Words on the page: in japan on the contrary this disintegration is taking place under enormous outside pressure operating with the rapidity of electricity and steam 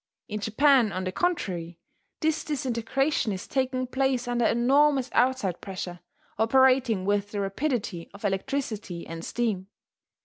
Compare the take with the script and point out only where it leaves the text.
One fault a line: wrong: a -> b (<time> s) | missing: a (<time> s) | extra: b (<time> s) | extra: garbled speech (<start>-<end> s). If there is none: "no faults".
no faults